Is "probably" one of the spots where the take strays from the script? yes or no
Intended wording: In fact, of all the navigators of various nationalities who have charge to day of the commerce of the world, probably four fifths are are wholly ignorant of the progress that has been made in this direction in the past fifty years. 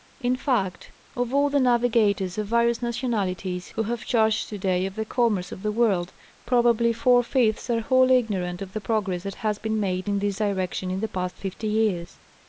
no